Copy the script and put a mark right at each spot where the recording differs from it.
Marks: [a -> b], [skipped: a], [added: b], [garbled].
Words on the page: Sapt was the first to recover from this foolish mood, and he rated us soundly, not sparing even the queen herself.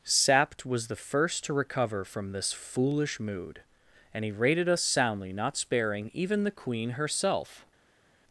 Sapt was the first to recover from this foolish mood, and he rated us soundly, not sparing even the queen herself.